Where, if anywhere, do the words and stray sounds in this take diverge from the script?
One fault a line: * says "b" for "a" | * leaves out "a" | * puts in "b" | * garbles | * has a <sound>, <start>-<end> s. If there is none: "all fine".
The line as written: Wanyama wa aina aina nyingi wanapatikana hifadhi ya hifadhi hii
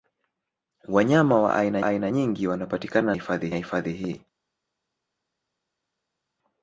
all fine